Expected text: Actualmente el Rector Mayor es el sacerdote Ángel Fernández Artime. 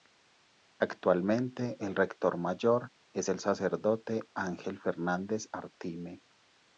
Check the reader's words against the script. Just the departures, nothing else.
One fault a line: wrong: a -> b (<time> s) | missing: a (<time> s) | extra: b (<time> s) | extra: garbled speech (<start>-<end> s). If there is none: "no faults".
no faults